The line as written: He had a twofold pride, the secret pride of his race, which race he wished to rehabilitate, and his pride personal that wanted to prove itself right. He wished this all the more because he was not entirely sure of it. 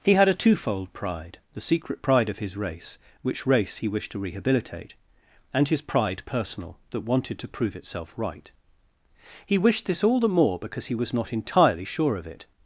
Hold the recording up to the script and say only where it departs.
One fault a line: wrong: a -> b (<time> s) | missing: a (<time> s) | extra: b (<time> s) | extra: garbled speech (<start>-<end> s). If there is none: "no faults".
no faults